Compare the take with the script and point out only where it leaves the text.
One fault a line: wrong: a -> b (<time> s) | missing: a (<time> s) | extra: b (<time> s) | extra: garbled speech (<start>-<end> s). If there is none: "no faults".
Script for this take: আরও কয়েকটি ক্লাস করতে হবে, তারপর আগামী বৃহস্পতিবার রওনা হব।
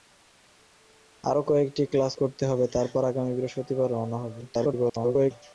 extra: garbled speech (4.4-5.3 s)